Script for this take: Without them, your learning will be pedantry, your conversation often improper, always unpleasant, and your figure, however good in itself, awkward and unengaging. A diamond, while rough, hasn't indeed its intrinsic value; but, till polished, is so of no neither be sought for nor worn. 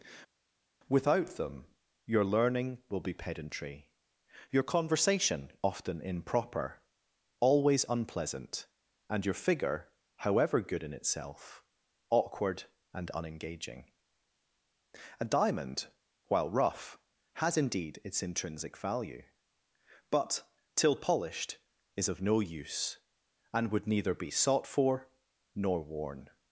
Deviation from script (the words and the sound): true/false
true